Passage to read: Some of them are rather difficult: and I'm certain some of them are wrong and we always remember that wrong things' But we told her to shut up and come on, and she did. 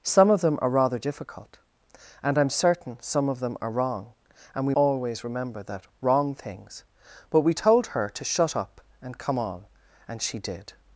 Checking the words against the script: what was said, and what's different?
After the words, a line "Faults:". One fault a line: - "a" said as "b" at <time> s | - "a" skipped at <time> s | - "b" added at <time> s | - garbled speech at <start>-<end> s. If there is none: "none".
Some of them are rather difficult: and I'm certain some of them are wrong and we always remember that wrong things' But we told her to shut up and come on, and she did.
Faults:
none